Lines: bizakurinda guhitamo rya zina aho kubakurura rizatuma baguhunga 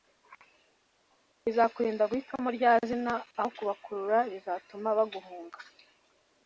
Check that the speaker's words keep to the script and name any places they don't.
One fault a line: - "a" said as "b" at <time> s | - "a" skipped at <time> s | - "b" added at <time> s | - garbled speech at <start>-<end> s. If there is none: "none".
none